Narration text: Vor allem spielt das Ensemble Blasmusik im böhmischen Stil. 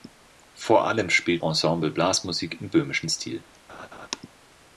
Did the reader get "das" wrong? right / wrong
wrong